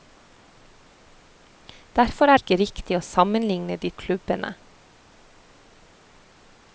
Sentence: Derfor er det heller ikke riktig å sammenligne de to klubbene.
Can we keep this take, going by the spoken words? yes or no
no